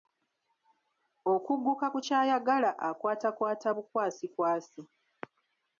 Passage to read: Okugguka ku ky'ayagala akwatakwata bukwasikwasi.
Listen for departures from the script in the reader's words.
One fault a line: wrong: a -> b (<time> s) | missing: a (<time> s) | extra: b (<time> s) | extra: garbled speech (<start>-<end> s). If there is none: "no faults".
no faults